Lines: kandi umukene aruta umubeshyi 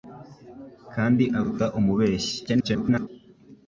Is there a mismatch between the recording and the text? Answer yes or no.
yes